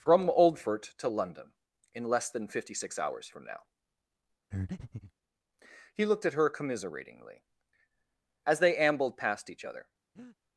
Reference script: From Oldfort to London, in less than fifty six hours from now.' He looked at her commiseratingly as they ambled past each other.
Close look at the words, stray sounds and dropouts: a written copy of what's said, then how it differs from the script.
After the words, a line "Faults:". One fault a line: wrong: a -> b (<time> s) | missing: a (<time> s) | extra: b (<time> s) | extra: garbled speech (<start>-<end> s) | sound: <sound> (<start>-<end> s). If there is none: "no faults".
From Oldfort to London, in less than fifty six hours from now.' He looked at her commiseratingly as they ambled past each other.
Faults:
sound: breath (4.5-5.1 s)
sound: breath (10.2-10.4 s)